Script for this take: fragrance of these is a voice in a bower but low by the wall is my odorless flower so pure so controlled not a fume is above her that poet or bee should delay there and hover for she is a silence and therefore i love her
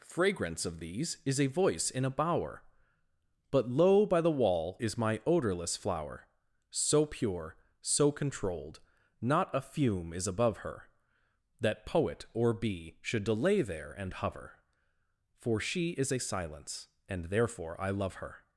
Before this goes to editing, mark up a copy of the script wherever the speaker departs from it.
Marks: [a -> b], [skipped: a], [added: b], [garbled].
fragrance of these is a voice in a bower but low by the wall is my odorless flower so pure so controlled not a fume is above her that poet or bee should delay there and hover for she is a silence and therefore i love her